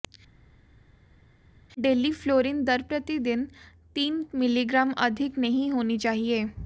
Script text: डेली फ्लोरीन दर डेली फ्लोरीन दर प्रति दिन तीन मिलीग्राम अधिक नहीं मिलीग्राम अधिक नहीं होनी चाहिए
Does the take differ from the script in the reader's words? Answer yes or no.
yes